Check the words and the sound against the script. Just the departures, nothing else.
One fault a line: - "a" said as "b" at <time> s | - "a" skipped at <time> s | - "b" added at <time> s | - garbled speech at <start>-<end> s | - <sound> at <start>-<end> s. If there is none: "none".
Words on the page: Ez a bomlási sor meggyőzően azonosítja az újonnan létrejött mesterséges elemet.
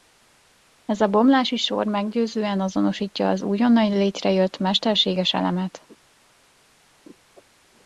none